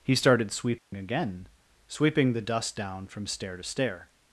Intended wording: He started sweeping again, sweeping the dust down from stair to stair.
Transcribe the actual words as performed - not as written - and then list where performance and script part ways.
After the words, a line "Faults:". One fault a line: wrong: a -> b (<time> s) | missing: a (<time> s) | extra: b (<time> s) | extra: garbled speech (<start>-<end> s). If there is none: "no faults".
He started sweeping again, sweeping the dust down from stair to stair.
Faults:
no faults